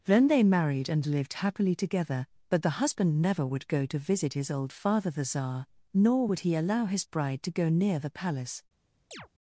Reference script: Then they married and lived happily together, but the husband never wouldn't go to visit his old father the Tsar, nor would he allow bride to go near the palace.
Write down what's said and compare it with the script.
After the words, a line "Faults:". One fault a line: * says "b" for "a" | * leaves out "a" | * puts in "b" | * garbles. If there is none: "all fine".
Then they married and lived happily together, but the husband never would go to visit his old father the Tsar, nor would he allow his bride to go near the palace.
Faults:
* says "would" for "wouldn't"
* puts in "his"